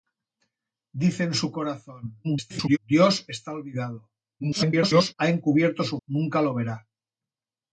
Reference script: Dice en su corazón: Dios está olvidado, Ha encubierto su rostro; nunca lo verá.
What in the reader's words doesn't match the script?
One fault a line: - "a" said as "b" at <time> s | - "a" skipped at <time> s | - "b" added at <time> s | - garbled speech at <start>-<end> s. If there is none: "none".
- garbled speech at 2.2-2.8 s
- garbled speech at 4.4-5.1 s
- "rostro" skipped at 6.0 s